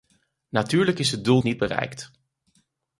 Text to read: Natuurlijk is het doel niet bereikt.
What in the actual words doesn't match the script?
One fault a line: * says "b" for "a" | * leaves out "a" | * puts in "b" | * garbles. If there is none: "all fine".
all fine